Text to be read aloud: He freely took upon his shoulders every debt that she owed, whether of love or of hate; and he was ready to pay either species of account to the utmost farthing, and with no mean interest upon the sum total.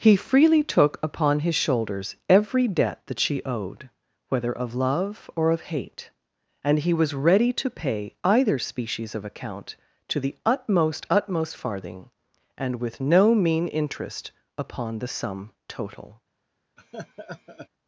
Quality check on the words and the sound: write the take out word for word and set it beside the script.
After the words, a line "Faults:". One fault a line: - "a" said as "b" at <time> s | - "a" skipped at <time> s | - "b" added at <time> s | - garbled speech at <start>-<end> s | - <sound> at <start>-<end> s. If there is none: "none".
He freely took upon his shoulders every debt that she owed, whether of love or of hate; and he was ready to pay either species of account to the utmost utmost farthing, and with no mean interest upon the sum total.
Faults:
- "utmost" added at 11.1 s
- laugh at 16.8-17.7 s